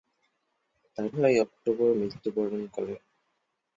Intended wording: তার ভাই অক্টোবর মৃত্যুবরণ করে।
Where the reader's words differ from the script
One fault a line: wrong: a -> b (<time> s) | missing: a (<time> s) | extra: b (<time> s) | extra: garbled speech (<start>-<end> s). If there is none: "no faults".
no faults